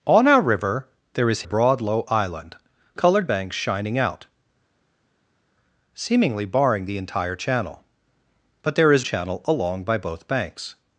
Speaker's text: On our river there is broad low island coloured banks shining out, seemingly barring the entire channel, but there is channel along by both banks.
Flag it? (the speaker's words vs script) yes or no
no